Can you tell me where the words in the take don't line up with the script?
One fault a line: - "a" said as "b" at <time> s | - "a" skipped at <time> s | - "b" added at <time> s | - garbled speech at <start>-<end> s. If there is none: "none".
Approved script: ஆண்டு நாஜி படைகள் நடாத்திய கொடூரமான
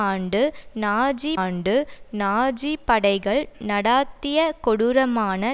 - "ஆண்டு நாஜி" added at 1.3 s